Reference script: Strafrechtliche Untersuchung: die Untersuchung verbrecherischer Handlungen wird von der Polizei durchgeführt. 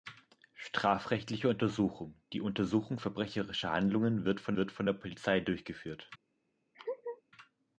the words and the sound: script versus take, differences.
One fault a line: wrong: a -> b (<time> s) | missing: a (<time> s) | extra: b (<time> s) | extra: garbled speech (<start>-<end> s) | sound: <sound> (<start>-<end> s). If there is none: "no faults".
extra: wird von (4.5 s)
sound: laugh (6.7-7.2 s)